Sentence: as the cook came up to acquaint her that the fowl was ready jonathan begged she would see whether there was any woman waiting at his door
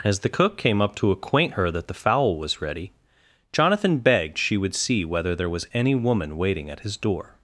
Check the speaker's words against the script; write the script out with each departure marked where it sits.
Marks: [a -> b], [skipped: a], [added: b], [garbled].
as the cook came up to acquaint her that the fowl was ready jonathan begged she would see whether there was any woman waiting at his door